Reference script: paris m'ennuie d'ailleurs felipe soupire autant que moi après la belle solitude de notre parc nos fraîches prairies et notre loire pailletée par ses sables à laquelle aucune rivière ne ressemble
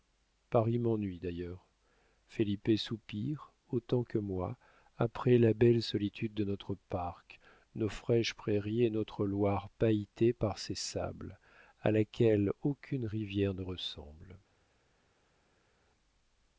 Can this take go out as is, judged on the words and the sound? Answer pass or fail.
pass